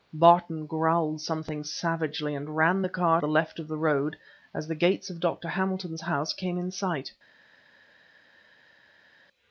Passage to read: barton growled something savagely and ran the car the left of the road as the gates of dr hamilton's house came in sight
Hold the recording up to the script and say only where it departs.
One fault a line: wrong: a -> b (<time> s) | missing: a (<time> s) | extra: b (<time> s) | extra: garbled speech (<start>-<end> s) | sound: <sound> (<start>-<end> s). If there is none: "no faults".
no faults